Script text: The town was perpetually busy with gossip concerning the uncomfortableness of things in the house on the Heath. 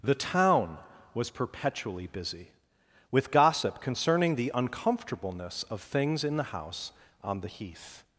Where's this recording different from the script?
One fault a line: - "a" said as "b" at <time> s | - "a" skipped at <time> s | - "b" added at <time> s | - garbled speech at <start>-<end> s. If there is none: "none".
none